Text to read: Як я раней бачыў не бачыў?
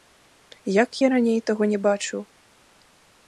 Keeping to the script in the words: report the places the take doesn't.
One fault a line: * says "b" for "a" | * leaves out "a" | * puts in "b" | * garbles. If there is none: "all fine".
* says "таго" for "бачыў"